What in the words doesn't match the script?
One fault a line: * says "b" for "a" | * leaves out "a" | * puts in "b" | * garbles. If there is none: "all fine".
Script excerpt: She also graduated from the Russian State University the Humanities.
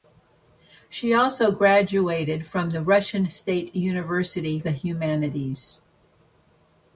all fine